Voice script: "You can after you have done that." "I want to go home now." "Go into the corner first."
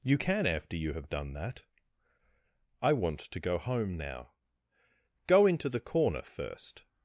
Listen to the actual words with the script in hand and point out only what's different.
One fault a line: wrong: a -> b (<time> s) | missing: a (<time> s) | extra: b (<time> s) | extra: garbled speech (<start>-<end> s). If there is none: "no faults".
no faults